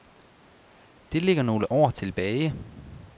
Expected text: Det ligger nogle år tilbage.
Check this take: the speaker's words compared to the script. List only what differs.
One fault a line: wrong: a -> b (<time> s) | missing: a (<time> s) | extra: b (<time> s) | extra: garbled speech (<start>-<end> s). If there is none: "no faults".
no faults